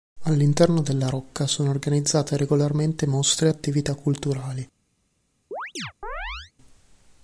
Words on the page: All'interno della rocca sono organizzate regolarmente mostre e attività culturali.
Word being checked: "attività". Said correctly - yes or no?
yes